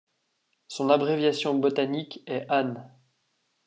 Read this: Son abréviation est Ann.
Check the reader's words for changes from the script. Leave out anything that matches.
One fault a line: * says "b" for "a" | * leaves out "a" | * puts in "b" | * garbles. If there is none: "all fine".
* puts in "botanique"